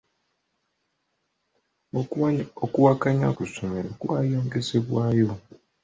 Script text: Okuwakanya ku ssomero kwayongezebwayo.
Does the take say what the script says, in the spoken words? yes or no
yes